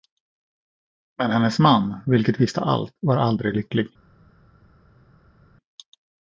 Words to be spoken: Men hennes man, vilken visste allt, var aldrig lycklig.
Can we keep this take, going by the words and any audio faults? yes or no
yes